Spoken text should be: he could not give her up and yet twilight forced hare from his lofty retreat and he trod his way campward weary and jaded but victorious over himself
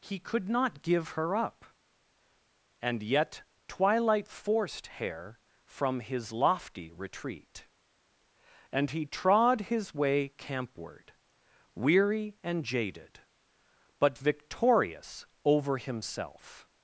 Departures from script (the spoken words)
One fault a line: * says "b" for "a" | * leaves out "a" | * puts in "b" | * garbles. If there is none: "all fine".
all fine